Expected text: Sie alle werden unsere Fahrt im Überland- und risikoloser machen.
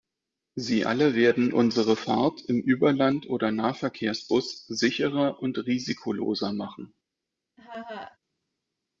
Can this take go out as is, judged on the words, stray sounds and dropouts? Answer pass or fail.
fail